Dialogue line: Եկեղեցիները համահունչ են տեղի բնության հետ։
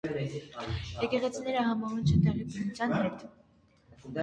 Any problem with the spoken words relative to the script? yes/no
no